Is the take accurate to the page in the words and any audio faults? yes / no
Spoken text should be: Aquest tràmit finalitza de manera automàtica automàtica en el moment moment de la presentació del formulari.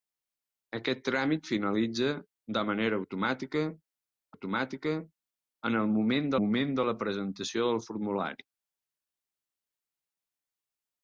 yes